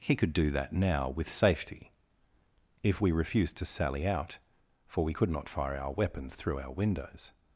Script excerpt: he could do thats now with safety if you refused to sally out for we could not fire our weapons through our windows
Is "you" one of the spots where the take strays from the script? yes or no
yes